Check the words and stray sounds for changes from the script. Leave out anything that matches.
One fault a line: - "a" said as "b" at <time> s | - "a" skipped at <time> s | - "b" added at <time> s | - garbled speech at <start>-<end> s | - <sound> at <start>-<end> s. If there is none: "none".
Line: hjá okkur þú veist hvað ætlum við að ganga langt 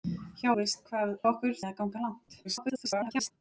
- "okkur þú" skipped at 0.5 s
- "ætlum" said as "okkur" at 1.3 s
- garbled speech at 2.4-3.3 s